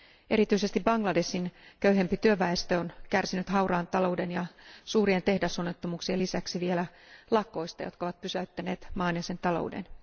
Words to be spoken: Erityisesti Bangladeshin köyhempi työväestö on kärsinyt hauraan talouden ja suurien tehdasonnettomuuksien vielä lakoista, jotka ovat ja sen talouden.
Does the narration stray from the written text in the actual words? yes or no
yes